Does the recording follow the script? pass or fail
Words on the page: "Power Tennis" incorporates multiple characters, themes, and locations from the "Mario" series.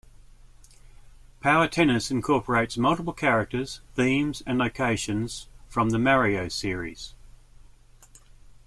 pass